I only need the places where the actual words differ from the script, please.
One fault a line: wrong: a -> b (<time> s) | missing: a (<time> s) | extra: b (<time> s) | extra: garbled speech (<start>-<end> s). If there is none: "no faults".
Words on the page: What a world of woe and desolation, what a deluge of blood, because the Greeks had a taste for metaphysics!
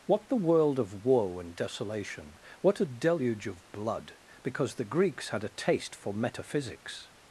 wrong: a -> the (0.3 s)